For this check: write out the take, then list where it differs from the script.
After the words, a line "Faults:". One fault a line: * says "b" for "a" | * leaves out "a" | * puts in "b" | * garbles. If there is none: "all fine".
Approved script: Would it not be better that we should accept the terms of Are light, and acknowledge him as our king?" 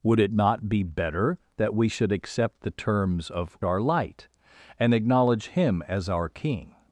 Would it not be better that we should accept the terms of Are light, and acknowledge him as our king?"
Faults:
all fine